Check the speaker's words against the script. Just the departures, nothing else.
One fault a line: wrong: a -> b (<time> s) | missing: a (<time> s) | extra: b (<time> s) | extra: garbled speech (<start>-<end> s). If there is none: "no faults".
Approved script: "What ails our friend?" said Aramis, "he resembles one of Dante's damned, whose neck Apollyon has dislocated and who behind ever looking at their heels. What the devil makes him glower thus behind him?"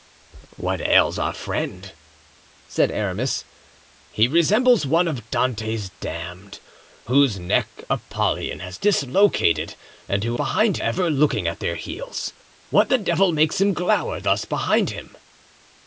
no faults